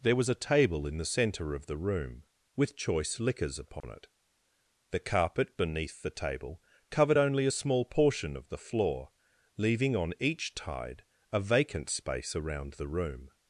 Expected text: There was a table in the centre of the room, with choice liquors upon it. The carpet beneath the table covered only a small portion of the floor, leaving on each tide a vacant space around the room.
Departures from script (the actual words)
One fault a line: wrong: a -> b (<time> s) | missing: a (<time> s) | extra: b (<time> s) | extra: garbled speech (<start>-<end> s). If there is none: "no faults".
no faults